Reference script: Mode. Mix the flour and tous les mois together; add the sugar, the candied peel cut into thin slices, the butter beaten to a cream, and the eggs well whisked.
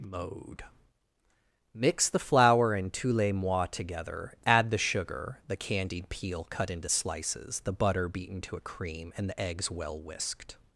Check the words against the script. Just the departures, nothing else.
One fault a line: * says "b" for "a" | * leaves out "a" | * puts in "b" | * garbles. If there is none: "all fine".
* leaves out "thin"